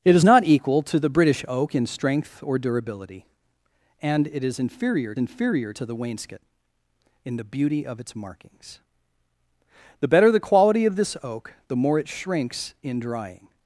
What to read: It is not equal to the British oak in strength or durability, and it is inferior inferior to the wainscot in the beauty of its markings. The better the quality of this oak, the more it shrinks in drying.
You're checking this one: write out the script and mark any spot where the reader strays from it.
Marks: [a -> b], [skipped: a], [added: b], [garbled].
It is not equal to the British oak in strength or durability, and it is inferior inferior to the wainscot in the beauty of its markings. The better the quality of this oak, the more it shrinks in drying.